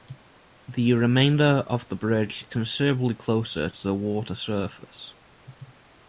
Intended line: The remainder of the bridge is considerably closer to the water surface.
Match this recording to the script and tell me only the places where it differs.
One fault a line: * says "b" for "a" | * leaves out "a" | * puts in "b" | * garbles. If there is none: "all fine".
* leaves out "is"